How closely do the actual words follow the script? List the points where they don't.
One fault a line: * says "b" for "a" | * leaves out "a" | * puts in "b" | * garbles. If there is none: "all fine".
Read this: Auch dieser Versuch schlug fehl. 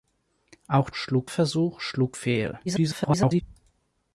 * says "schlug" for "dieser"
* garbles